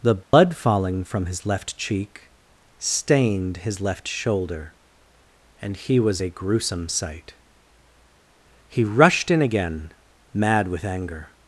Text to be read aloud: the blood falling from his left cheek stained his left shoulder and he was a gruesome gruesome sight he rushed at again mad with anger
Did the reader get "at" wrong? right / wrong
wrong